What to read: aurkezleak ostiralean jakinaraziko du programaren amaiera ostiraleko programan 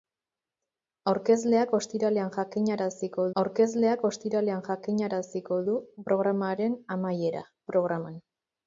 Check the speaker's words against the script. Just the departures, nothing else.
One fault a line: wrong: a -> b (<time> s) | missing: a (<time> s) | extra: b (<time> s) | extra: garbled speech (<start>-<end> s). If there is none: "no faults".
extra: aurkezleak ostiralean jakinaraziko (3.4 s)
missing: ostiraleko (7.5 s)